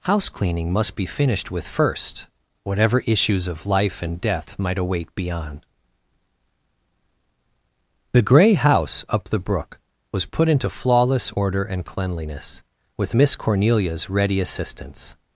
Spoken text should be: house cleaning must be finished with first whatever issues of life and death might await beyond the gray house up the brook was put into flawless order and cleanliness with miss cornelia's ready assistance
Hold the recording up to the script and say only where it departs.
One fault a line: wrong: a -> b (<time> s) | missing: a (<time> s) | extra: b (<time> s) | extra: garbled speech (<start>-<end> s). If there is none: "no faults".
no faults